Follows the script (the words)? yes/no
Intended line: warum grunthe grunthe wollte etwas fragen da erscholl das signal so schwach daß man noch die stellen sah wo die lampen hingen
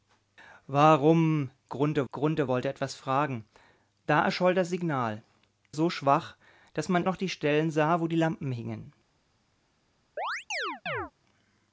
yes